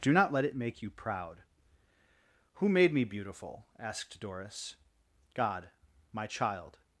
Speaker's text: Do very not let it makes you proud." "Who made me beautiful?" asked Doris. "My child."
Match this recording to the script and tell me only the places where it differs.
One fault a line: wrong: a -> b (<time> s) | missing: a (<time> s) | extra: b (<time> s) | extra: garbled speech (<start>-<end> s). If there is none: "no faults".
missing: very (0.1 s)
wrong: makes -> make (0.6 s)
extra: God (5.3 s)